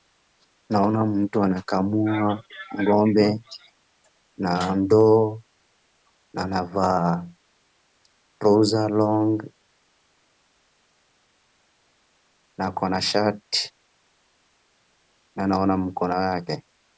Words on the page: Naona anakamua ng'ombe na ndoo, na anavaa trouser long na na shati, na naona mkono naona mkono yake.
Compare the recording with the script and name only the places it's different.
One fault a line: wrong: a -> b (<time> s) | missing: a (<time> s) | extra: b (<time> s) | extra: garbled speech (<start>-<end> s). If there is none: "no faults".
extra: mtu (1.1 s)
extra: ako (12.7 s)
missing: naona mkono (16.2 s)